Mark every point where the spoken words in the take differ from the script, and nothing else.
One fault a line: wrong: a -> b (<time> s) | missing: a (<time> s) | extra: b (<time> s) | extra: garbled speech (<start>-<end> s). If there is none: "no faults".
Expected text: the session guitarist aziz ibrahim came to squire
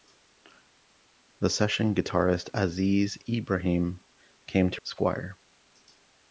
no faults